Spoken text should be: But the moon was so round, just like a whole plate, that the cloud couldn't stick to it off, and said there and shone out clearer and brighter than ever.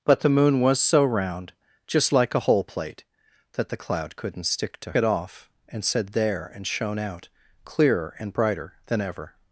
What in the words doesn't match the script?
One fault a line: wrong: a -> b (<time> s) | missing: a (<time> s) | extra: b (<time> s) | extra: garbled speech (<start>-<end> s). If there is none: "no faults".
no faults